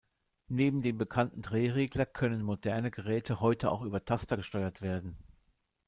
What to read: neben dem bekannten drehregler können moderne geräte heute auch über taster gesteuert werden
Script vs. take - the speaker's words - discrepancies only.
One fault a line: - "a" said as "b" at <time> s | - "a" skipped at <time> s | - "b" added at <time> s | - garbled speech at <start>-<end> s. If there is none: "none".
none